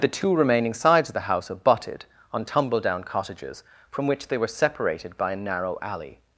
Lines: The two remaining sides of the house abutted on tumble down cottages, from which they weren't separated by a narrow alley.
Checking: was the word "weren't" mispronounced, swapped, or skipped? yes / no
yes